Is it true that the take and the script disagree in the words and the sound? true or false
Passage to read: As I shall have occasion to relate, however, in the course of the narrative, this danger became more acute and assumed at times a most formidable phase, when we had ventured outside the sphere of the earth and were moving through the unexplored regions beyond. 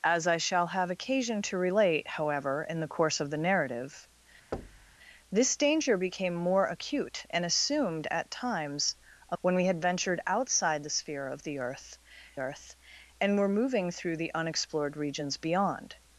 true